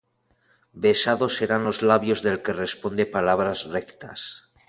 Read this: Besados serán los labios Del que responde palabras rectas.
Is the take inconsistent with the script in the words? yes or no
no